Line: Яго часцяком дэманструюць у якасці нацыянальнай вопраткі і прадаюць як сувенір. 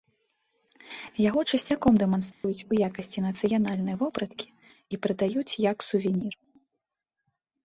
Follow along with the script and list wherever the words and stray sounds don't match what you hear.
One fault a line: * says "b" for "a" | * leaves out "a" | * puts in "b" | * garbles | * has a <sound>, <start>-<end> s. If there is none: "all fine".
* has a dropout, 2.3-2.4 s